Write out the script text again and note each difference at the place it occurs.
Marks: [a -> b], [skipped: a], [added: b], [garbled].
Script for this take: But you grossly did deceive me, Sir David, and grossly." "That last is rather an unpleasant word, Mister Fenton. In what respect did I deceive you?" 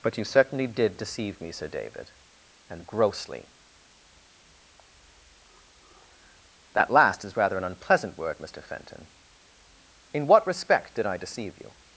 But you [grossly -> certainly] did deceive me, Sir David, and grossly." "That last is rather an unpleasant word, Mister Fenton. In what respect did I deceive you?"